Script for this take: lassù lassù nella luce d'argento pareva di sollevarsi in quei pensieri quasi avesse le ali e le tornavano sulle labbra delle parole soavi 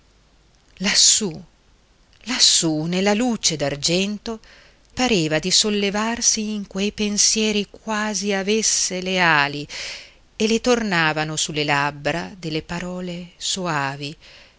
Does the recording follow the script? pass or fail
pass